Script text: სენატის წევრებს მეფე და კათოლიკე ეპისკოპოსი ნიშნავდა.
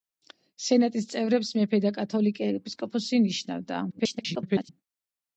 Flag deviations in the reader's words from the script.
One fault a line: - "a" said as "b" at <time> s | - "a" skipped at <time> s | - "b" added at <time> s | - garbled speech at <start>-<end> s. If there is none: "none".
- garbled speech at 3.9-4.7 s